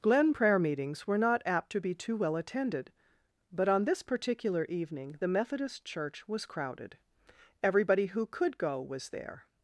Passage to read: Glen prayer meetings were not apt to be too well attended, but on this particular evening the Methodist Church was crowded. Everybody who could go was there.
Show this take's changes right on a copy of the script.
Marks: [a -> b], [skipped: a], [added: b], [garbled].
Glen prayer meetings were not apt to be too well attended, but on this particular evening the Methodist Church was crowded. Everybody who could go was there.